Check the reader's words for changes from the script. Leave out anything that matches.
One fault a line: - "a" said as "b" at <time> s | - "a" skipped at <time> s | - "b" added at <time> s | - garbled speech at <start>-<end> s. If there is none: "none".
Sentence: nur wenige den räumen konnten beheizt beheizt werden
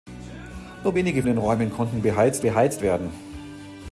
none